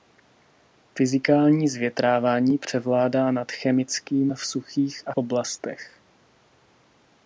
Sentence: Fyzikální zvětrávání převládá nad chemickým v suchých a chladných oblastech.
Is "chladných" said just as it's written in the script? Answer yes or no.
no